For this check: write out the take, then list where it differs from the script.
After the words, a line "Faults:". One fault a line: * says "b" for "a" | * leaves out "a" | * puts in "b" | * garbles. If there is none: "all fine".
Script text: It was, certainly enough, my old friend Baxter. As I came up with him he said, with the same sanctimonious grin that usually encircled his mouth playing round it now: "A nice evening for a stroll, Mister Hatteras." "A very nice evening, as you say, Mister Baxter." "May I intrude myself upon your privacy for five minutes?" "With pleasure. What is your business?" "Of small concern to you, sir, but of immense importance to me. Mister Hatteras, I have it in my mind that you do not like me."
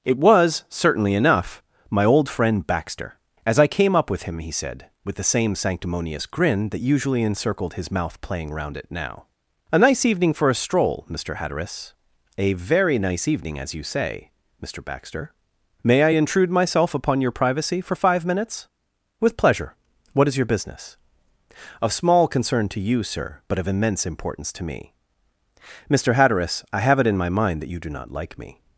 It was, certainly enough, my old friend Baxter. As I came up with him he said, with the same sanctimonious grin that usually encircled his mouth playing round it now: "A nice evening for a stroll, Mister Hatteras." "A very nice evening, as you say, Mister Baxter." "May I intrude myself upon your privacy for five minutes?" "With pleasure. What is your business?" "Of small concern to you, sir, but of immense importance to me. Mister Hatteras, I have it in my mind that you do not like me."
Faults:
all fine